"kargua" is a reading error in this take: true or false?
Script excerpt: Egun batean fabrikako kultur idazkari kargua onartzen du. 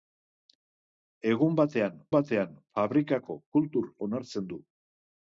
true